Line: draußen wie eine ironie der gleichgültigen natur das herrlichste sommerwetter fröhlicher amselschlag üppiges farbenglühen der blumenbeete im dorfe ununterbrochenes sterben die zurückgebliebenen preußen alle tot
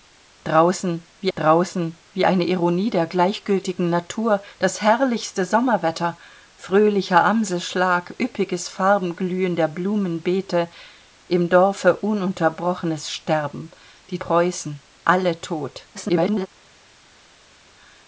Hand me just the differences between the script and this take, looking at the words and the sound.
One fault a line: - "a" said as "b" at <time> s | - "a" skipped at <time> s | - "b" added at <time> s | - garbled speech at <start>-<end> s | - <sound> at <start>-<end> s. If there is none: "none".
- "draußen wie" added at 1.4 s
- "zurückgebliebenen" skipped at 14.2 s
- garbled speech at 15.9-16.5 s